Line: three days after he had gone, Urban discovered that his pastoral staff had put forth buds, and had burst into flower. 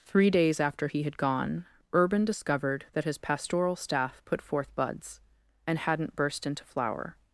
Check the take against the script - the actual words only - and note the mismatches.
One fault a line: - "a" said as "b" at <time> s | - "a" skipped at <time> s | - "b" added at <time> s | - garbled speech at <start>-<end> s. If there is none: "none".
- "had" skipped at 4.2 s
- "had" said as "hadn't" at 5.8 s